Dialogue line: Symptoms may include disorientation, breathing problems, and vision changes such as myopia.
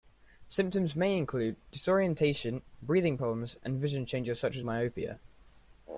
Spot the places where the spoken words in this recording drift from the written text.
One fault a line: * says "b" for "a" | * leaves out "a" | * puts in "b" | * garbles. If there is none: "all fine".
all fine